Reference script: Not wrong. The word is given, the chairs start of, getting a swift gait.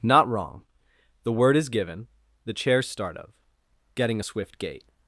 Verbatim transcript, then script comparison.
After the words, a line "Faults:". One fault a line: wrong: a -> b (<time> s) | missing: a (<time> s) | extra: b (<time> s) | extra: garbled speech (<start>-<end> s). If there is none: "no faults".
Not wrong. The word is given, the chairs start of, getting a swift gait.
Faults:
no faults